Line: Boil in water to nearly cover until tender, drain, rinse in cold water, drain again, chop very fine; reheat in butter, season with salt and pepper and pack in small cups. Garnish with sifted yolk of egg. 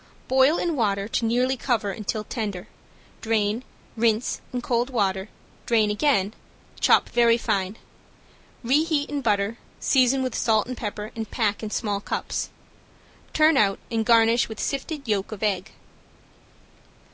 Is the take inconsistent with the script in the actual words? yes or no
yes